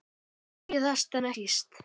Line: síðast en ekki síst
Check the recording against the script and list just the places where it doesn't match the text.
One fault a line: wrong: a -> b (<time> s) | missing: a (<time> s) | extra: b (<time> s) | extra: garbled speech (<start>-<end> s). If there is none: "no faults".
missing: ekki (1.3 s)